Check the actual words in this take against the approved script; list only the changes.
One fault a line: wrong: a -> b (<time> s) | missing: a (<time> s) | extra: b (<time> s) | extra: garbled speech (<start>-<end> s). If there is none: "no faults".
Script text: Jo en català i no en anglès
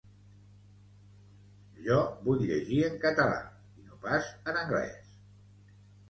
extra: vull llegir (2.3 s)
extra: pas (4.1 s)